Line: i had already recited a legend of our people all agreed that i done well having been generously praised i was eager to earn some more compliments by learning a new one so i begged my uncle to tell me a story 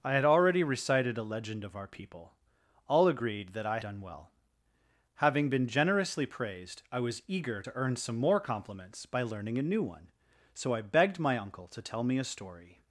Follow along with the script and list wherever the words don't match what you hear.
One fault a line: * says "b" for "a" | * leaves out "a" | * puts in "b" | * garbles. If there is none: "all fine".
all fine